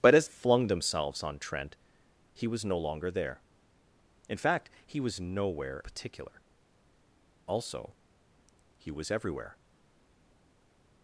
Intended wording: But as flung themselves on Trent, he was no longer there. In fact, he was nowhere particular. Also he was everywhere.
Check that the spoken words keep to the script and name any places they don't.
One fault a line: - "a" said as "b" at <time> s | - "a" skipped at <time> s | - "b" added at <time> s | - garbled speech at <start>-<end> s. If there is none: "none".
none